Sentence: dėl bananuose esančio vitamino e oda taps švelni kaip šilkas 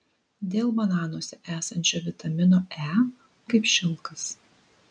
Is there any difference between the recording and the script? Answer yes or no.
yes